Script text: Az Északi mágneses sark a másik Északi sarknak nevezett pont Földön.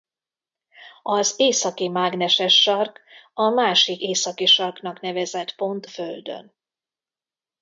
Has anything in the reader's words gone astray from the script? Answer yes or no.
no